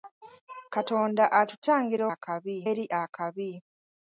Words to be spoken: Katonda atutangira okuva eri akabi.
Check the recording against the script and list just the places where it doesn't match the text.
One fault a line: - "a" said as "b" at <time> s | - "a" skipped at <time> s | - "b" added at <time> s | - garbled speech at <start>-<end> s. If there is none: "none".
- "okuva" said as "akabi" at 2.1 s